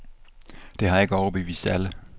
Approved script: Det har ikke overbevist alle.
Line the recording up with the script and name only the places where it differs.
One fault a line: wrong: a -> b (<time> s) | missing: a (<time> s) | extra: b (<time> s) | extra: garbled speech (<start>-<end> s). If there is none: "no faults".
no faults